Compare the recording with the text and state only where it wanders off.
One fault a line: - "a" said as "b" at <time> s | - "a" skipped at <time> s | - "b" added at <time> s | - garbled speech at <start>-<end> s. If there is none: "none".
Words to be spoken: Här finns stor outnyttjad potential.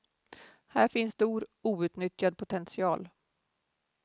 none